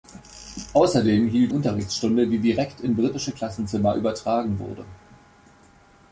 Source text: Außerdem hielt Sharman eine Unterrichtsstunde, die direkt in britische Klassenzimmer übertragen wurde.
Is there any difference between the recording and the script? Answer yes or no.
yes